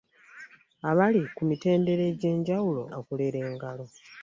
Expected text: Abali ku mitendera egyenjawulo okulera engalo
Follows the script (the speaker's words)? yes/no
yes